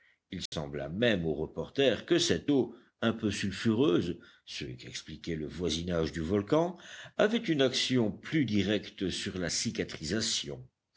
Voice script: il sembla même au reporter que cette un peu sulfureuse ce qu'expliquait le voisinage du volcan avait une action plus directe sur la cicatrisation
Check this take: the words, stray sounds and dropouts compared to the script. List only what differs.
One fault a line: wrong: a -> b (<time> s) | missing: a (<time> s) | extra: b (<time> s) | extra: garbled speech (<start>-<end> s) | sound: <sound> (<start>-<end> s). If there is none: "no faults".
sound: dropout (0.5-0.5 s)
extra: eau (2.5 s)